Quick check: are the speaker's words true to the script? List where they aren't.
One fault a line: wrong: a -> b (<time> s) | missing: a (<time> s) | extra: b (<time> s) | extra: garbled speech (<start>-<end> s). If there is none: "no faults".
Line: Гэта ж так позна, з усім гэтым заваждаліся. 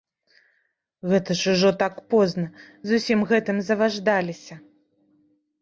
extra: ужо (1.6 s)